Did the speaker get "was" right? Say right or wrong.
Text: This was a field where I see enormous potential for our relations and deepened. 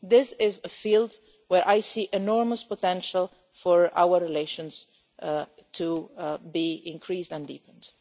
wrong